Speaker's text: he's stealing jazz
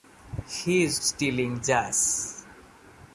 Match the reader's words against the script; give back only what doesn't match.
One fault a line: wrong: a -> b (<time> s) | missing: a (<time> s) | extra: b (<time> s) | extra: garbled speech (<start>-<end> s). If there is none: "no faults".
no faults